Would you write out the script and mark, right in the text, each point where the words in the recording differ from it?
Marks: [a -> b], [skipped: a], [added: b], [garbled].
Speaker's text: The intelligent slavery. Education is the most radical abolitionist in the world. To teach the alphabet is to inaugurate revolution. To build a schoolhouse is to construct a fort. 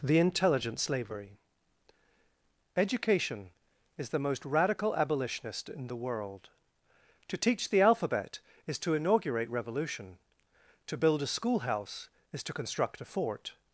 The intelligent slavery. Education is the most radical abolitionist in the world. To teach the alphabet is to inaugurate revolution. To build a schoolhouse is to construct a fort.